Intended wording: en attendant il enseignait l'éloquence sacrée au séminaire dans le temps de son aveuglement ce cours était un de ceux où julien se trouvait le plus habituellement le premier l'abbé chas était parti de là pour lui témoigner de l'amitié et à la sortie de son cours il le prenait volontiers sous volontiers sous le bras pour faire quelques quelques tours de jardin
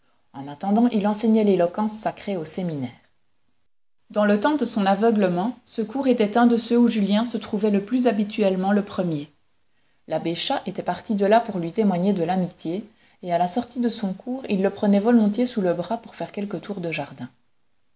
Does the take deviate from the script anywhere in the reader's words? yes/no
yes